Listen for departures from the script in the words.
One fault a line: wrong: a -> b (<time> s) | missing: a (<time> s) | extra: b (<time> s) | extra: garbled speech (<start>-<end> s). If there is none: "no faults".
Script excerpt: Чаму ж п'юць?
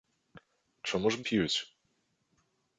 no faults